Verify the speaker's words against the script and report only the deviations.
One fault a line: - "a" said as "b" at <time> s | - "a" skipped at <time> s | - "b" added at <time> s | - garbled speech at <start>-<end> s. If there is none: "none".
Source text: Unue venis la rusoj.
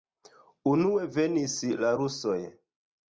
none